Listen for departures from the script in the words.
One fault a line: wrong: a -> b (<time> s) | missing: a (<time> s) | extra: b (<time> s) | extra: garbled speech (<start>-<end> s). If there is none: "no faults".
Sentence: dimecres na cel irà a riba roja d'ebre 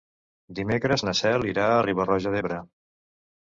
no faults